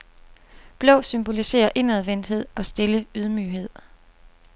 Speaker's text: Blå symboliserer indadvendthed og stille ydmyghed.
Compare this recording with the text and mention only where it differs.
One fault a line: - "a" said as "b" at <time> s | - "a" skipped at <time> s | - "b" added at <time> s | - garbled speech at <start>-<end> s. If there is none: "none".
none